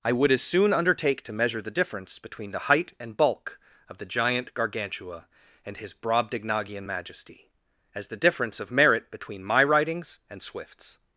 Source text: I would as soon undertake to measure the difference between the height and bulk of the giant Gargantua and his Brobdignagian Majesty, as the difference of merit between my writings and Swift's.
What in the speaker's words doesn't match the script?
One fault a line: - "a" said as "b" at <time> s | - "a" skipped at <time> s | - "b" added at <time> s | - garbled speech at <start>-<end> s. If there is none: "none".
none